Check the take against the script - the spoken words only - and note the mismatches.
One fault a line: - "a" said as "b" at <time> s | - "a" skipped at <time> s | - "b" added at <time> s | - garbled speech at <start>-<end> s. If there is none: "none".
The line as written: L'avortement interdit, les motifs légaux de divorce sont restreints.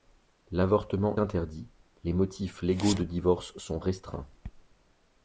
none